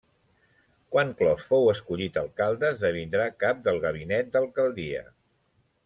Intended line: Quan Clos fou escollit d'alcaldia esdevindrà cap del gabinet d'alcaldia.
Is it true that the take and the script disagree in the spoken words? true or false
true